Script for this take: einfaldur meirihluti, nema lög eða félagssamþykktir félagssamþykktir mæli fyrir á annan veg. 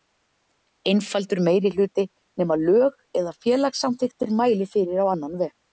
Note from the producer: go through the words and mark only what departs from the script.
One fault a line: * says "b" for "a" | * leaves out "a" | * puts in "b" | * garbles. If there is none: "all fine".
* leaves out "félagssamþykktir"